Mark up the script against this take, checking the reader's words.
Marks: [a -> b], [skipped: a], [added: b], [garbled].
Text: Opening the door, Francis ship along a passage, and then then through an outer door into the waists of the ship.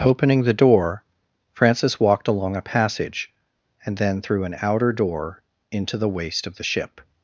Opening the door, Francis [ship -> walked] along a passage, and then [skipped: then] through an outer door into the [waists -> waist] of the ship.